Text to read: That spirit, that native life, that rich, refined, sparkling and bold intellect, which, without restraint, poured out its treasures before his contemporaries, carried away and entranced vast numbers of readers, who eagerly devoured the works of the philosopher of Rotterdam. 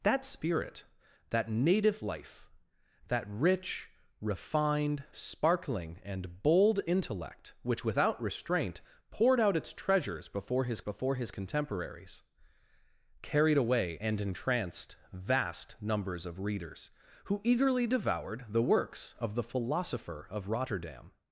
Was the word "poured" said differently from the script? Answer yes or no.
no